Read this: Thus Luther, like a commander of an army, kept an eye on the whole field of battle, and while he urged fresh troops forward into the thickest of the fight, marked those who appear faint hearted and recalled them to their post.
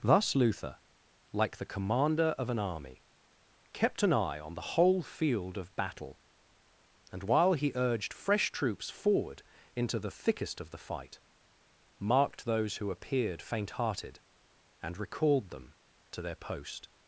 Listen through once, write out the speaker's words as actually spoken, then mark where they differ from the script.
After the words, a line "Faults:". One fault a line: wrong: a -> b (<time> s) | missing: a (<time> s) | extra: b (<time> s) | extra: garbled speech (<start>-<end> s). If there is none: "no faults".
Thus Luther, like the commander of an army, kept an eye on the whole field of battle, and while he urged fresh troops forward into the thickest of the fight, marked those who appeared faint hearted and recalled them to their post.
Faults:
wrong: a -> the (1.6 s)
wrong: appear -> appeared (12.9 s)